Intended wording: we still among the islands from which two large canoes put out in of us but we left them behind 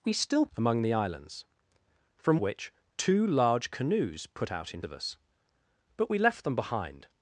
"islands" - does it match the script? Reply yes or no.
yes